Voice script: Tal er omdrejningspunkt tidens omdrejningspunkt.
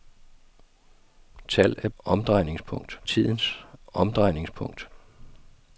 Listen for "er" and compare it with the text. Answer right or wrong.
right